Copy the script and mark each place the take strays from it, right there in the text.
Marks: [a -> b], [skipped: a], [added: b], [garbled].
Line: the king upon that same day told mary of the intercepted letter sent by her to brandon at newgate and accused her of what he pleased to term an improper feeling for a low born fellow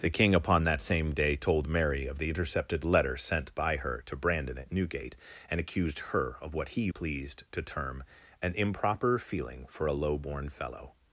the king upon that same day told mary of the intercepted letter sent by her to brandon at newgate and accused her of what he pleased to term an improper feeling for a low born fellow